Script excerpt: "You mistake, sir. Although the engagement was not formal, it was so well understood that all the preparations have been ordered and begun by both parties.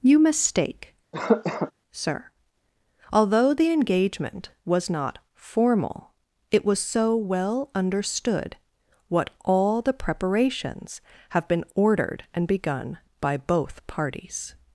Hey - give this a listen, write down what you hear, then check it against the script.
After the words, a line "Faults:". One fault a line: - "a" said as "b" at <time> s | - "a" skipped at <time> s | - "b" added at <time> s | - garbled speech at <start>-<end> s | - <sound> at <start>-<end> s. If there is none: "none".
"You mistake, sir. Although the engagement was not formal, it was so well understood what all the preparations have been ordered and begun by both parties.
Faults:
- cough at 1.1-1.7 s
- "that" said as "what" at 9.1 s